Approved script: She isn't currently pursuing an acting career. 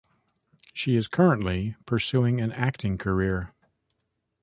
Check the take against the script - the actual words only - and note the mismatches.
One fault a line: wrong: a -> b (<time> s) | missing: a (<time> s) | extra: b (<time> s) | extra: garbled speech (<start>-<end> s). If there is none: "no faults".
wrong: isn't -> is (0.9 s)